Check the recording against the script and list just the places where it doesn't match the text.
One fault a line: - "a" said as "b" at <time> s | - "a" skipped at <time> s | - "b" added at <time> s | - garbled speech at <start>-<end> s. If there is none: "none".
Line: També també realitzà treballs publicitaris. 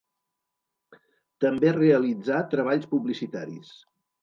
- "també" skipped at 1.8 s